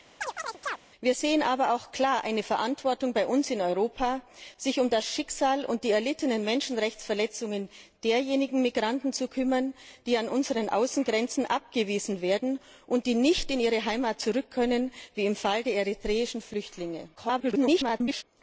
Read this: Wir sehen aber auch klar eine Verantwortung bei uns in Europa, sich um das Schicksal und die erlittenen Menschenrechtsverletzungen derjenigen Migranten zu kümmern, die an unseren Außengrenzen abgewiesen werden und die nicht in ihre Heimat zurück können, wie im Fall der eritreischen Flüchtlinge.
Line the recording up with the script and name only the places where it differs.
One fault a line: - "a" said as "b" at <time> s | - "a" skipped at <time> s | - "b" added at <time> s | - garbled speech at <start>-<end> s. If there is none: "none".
- garbled speech at 17.2-18.2 s